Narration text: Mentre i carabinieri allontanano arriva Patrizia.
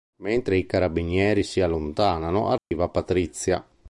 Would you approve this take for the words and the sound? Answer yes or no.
no